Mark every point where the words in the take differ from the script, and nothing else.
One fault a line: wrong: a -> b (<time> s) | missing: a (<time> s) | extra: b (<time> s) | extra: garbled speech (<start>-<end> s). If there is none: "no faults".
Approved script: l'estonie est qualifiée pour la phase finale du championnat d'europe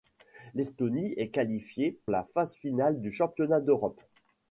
missing: pour (2.0 s)